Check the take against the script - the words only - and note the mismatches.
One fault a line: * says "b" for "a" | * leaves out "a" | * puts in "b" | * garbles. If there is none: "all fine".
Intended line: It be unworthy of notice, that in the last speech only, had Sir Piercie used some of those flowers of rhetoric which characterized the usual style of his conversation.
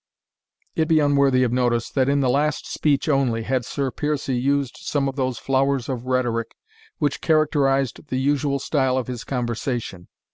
all fine